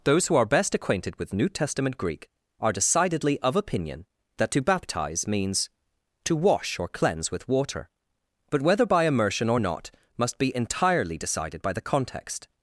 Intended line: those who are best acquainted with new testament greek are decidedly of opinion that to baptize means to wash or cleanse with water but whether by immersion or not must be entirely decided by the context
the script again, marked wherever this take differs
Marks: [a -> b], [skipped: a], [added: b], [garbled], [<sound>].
those who are best acquainted with new testament greek are decidedly of opinion that to baptize means to wash or cleanse with water but whether by immersion or not must be entirely decided by the context